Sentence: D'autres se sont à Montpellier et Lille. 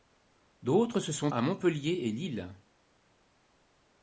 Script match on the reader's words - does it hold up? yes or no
yes